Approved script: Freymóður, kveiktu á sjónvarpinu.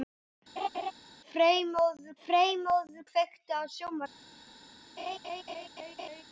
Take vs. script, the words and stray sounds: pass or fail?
fail